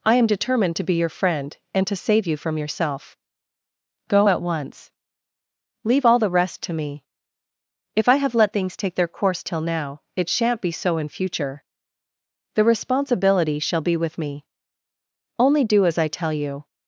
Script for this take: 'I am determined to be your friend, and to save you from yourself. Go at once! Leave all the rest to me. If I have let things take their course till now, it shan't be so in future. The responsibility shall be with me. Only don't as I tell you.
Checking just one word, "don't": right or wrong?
wrong